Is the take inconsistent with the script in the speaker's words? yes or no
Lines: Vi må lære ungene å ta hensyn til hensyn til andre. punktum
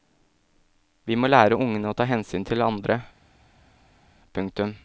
yes